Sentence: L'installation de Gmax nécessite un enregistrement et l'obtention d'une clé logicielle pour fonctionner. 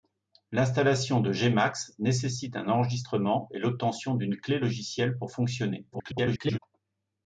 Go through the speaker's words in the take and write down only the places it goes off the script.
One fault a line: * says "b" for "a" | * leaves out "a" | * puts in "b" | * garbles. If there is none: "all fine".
* garbles